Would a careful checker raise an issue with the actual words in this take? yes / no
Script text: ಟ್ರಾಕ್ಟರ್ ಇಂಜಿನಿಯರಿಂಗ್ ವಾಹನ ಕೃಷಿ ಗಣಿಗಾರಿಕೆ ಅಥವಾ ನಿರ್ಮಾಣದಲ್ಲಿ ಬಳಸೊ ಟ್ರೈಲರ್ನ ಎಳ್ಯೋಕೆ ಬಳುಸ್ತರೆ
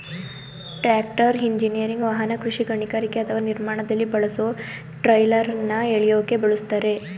no